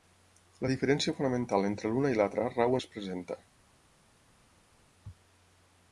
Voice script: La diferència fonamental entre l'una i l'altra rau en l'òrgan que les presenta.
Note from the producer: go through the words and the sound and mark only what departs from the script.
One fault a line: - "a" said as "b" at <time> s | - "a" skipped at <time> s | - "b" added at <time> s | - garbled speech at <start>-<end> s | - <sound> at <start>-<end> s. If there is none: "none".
- "en l'òrgan que" skipped at 2.8 s